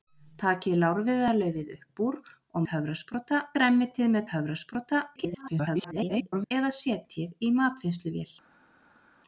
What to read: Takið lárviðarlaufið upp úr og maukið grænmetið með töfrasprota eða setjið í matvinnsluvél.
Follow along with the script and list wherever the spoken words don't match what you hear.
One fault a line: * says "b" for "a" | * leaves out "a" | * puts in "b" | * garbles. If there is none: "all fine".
* says "töfrasprota" for "maukið"
* garbles